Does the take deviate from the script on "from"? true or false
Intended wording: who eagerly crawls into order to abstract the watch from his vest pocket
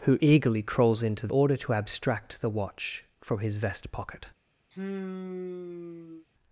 false